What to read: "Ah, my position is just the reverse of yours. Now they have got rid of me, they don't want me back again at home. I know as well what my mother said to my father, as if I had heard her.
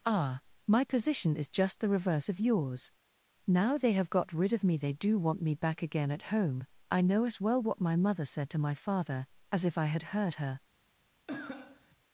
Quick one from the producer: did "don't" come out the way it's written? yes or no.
no